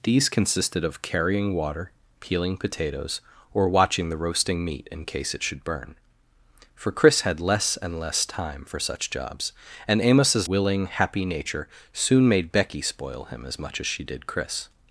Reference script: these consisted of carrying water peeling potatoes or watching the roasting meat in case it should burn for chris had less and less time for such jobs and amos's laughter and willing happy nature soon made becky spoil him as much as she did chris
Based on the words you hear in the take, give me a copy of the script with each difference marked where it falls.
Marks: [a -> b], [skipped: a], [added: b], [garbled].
these consisted of carrying water peeling potatoes or watching the roasting meat in case it should burn for chris had less and less time for such jobs and amos's [skipped: laughter and] willing happy nature soon made becky spoil him as much as she did chris